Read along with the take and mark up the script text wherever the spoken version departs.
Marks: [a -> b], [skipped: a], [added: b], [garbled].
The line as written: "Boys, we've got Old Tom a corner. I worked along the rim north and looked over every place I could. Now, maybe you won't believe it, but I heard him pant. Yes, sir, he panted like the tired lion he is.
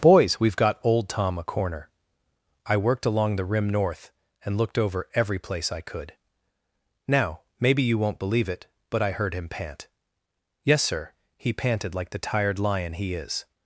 "Boys, we've got Old Tom a corner. I worked along the rim north and looked over every place I could. Now, maybe you won't believe it, but I heard him pant. Yes, sir, he panted like the tired lion he is.